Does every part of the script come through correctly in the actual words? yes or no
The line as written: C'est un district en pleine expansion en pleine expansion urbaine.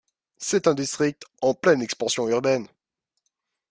no